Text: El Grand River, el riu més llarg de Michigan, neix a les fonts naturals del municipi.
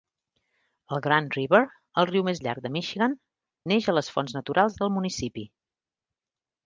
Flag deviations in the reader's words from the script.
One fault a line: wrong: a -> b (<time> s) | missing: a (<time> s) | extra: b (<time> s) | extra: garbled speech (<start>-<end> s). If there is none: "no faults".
no faults